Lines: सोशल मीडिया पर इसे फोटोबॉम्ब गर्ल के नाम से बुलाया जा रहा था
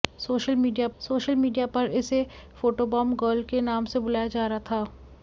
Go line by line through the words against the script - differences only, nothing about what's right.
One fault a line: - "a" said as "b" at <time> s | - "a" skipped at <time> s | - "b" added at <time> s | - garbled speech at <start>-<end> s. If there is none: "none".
- "सोशल मीडिया" added at 1.0 s